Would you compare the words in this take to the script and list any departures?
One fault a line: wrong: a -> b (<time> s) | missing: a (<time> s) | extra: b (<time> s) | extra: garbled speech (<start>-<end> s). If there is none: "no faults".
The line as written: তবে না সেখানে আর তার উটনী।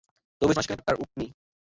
no faults